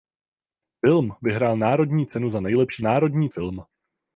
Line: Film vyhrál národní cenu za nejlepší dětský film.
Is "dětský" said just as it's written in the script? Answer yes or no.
no